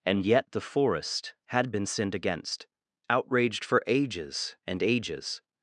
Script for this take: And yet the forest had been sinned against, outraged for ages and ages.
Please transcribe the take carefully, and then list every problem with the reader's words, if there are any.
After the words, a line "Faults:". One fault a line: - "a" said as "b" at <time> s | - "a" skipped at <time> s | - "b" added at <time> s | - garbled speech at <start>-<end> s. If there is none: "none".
And yet the forest had been sinned against, outraged for ages and ages.
Faults:
none